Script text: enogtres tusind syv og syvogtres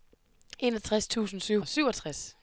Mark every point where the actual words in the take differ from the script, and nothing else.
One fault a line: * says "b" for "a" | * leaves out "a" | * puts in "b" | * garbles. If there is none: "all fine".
all fine